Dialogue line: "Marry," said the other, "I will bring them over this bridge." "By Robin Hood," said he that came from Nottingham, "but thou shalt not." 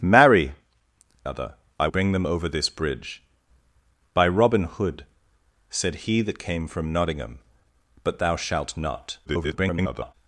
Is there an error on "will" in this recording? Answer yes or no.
yes